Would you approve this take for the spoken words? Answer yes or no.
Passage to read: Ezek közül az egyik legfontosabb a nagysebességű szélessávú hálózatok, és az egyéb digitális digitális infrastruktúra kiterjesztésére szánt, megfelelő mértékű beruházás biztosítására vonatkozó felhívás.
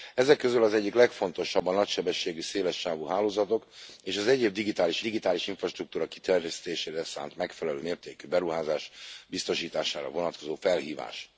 yes